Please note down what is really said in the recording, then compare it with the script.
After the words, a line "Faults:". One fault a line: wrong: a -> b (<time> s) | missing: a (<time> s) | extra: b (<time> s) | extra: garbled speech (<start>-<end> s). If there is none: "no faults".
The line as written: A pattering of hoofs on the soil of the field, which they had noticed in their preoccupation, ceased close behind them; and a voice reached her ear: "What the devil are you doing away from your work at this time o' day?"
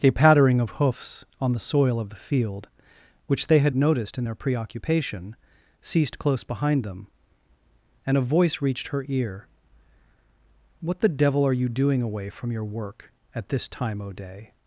A pattering of hoofs on the soil of the field, which they had noticed in their preoccupation, ceased close behind them; and a voice reached her ear: "What the devil are you doing away from your work at this time o' day?"
Faults:
no faults